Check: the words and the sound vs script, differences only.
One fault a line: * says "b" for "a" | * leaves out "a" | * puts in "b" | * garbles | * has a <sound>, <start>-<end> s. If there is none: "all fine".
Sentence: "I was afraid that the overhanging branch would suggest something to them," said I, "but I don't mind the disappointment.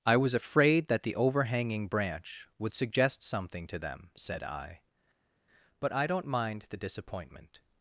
all fine